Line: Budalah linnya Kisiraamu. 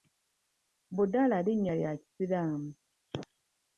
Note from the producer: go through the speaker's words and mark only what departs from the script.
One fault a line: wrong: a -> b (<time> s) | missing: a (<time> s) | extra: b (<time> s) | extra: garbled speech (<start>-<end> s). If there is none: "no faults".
extra: lya (1.8 s)